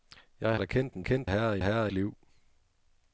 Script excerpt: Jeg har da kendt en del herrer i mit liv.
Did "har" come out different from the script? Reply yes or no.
yes